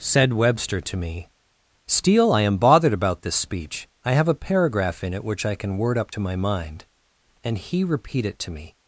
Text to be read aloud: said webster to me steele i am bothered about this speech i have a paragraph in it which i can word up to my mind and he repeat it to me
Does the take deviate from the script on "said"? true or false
false